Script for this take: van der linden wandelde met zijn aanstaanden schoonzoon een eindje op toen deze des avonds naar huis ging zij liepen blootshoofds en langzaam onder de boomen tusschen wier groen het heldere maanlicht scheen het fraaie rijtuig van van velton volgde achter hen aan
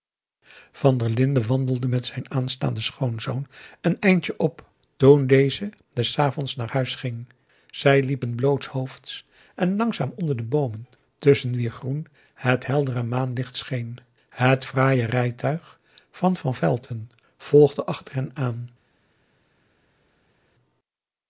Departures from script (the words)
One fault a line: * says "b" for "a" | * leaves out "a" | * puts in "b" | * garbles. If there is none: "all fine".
all fine